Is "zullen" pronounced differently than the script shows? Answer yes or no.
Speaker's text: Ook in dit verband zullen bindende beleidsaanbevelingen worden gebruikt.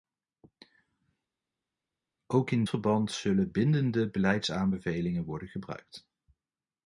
no